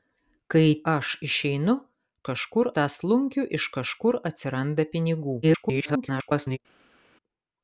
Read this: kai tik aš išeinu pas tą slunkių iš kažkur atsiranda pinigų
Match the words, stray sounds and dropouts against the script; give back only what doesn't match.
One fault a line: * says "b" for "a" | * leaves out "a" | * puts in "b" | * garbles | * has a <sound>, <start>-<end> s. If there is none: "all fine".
* leaves out "tik"
* says "kažkur" for "pas"
* garbles